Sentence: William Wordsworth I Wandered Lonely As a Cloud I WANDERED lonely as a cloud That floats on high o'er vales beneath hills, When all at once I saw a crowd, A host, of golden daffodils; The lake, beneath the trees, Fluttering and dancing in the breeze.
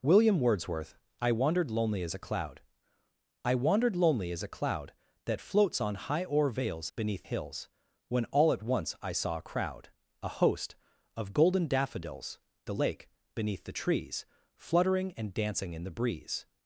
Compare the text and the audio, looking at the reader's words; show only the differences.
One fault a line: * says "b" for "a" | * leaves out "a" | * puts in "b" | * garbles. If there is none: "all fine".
all fine